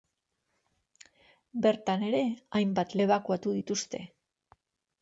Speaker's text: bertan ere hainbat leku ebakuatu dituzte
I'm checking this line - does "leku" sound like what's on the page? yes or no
no